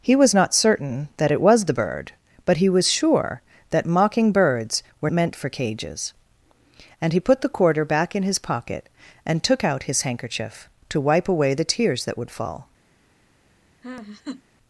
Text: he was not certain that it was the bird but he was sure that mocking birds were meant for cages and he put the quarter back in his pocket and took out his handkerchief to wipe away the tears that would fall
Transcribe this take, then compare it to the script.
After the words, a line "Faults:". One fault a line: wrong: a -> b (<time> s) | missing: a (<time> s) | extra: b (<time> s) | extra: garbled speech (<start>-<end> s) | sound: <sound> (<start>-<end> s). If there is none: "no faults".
he was not certain that it was the bird but he was sure that mocking birds were meant for cages and he put the quarter back in his pocket and took out his handkerchief to wipe away the tears that would fall
Faults:
sound: laugh (13.8-14.4 s)